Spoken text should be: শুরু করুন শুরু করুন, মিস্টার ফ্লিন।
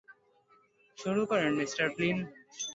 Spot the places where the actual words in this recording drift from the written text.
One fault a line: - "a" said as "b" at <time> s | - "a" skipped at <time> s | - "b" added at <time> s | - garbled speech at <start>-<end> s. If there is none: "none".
- "শুরু করুন" skipped at 1.5 s